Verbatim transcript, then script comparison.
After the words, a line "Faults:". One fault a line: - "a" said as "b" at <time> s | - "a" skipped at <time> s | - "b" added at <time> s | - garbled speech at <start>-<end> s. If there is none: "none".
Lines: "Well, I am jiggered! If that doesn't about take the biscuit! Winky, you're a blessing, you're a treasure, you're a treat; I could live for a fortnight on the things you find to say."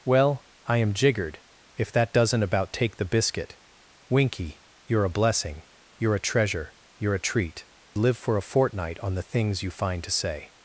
"Well, I am jiggered! If that doesn't about take the biscuit! Winky, you're a blessing, you're a treasure, you're a treat; live for a fortnight on the things you find to say."
Faults:
- "I could" skipped at 7.7 s